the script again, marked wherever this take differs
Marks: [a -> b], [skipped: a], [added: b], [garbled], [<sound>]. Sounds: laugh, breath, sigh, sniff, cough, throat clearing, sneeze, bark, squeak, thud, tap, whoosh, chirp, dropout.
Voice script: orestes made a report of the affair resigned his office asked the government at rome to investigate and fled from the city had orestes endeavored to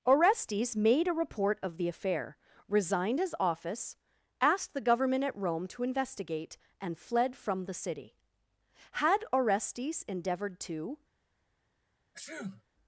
orestes made a report of the affair resigned his office asked the government at rome to investigate and fled from the city had orestes endeavored to [sneeze]